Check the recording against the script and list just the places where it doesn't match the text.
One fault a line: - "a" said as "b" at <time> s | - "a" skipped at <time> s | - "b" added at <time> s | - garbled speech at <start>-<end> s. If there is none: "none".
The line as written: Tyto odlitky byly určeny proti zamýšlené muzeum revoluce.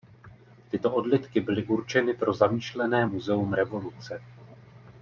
- "proti" said as "pro" at 2.1 s